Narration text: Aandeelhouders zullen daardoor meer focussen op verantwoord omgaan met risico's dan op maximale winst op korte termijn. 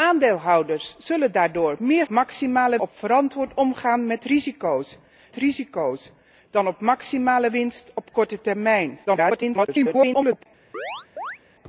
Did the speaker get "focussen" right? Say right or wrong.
wrong